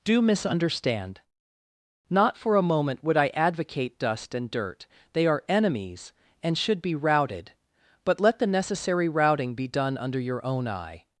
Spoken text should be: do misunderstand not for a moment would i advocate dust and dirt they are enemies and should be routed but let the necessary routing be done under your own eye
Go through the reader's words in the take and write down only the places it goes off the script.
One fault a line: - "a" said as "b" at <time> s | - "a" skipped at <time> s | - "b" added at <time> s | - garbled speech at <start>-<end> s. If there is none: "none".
none